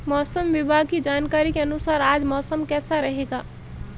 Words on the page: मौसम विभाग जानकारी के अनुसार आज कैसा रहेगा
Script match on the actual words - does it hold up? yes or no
no